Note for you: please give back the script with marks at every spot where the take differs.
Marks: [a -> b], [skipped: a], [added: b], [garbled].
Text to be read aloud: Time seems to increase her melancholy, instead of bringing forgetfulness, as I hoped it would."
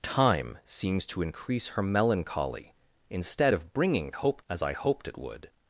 Time seems to increase her melancholy, instead of bringing [forgetfulness, -> hoped] as I hoped it would."